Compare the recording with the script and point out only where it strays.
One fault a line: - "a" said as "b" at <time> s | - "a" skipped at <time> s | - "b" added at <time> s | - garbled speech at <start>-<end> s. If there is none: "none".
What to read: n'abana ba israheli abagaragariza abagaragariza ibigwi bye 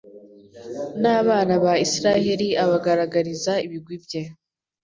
- "abagaragariza" skipped at 3.5 s